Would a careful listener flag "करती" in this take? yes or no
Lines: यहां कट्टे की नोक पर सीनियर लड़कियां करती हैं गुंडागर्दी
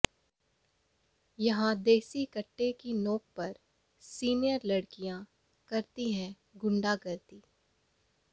no